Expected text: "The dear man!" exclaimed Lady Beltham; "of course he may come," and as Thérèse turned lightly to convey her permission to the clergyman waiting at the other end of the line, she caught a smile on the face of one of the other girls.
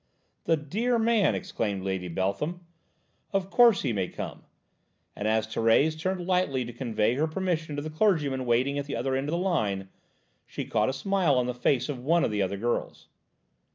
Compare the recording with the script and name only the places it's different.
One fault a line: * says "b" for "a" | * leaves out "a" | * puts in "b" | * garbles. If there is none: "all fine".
all fine